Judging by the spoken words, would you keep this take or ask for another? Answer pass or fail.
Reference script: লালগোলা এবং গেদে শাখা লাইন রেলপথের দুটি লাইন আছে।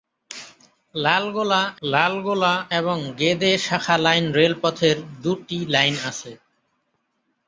fail